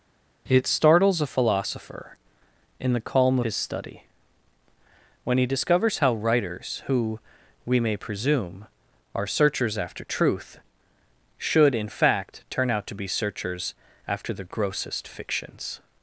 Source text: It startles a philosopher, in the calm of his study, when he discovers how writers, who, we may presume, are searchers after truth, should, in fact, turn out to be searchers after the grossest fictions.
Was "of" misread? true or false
true